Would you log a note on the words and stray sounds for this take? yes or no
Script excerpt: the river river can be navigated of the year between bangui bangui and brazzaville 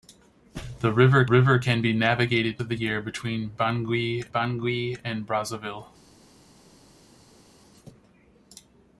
no